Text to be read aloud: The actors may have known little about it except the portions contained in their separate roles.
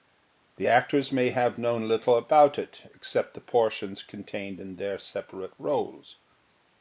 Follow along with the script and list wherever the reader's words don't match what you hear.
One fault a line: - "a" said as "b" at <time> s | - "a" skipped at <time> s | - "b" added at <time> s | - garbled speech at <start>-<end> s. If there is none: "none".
none